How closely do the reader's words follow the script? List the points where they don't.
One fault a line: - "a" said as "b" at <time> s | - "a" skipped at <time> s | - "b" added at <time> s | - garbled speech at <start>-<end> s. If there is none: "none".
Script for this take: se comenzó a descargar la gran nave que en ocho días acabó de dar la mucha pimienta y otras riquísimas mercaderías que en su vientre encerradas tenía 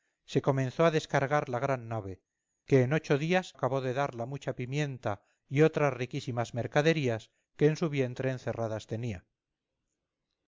none